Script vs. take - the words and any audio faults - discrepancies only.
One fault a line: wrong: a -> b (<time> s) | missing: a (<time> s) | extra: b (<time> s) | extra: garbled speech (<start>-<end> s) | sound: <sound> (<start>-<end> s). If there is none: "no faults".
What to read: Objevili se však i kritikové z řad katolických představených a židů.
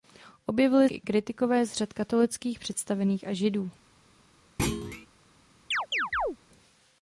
missing: se však (0.9 s)
sound: thud (4.6-5.1 s)
sound: chirp (5.7-6.4 s)